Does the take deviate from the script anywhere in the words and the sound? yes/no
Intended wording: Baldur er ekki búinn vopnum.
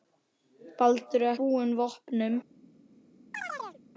yes